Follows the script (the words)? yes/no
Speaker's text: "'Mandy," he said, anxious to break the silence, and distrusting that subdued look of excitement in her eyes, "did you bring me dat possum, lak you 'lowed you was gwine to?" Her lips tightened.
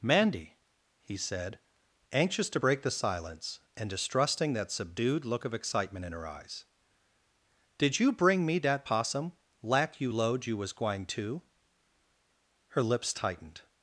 yes